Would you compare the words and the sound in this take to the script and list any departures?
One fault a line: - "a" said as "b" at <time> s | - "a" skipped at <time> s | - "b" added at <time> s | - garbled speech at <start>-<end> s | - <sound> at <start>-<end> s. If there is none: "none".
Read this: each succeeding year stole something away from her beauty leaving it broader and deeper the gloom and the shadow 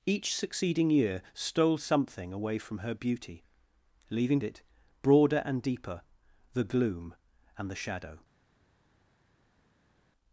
none